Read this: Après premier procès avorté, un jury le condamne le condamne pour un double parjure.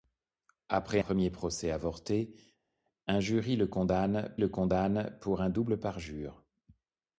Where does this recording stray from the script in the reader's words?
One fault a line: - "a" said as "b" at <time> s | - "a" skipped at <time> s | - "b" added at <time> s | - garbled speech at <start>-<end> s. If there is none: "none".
none